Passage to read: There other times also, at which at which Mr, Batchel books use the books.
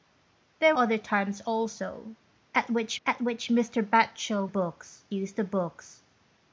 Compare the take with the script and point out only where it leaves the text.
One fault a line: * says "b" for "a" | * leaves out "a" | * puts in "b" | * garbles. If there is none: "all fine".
all fine